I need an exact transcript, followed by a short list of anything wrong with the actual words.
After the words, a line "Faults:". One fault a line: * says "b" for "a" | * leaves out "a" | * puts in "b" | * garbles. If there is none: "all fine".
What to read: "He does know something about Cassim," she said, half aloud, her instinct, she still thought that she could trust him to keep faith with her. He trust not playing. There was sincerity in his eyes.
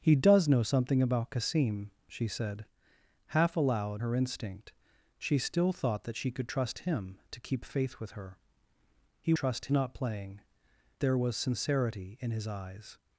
"He does know something about Cassim," she said, half aloud, her instinct, she still thought that she could trust him to keep faith with her. He trust not playing. There was sincerity in his eyes.
Faults:
all fine